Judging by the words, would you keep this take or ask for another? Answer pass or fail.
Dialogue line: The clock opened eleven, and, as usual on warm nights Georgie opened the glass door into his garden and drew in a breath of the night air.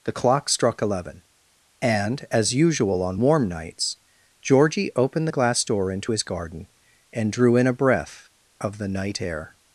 fail